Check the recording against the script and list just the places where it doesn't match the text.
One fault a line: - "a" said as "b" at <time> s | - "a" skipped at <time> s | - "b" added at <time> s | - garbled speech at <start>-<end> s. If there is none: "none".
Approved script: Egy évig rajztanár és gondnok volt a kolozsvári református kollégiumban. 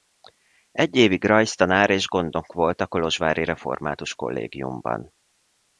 none